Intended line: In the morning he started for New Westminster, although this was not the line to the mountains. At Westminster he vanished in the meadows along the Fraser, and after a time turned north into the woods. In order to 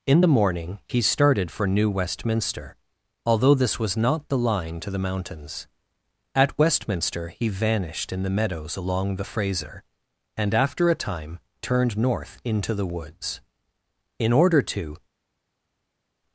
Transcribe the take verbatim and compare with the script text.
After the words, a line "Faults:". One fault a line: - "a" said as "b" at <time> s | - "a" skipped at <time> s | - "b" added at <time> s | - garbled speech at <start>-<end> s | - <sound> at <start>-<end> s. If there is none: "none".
In the morning he started for New Westminster, although this was not the line to the mountains. At Westminster he vanished in the meadows along the Fraser, and after a time turned north into the woods. In order to
Faults:
none